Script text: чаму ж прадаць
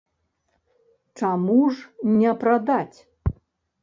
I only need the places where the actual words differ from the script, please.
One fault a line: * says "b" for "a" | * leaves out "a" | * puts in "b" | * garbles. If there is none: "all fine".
* puts in "не"